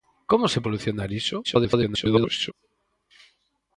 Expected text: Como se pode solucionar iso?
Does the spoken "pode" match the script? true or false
false